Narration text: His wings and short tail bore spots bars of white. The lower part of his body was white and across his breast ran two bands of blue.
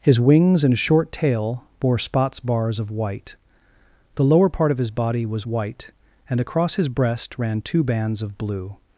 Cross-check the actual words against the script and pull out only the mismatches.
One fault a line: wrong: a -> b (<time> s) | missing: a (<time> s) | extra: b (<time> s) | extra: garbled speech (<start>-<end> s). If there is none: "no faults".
no faults